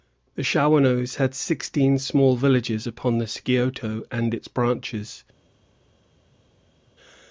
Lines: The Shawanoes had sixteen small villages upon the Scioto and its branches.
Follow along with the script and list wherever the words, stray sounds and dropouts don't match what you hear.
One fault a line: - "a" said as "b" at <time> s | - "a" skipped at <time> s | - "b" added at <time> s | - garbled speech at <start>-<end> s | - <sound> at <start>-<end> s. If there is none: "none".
none